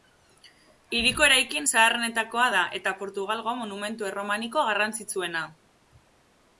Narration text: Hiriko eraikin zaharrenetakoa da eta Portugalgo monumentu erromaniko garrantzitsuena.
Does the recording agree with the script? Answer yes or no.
yes